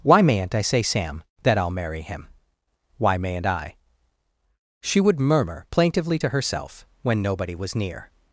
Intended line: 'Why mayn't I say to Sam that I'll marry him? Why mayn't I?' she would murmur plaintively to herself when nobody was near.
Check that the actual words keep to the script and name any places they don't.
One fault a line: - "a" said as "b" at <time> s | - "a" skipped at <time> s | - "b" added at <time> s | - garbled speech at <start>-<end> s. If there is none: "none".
- "to" skipped at 0.8 s